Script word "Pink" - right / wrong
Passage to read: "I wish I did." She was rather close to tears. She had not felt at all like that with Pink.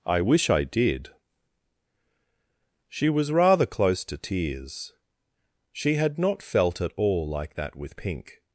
right